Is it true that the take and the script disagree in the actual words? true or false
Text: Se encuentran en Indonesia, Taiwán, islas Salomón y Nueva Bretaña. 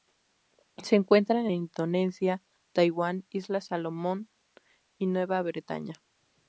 false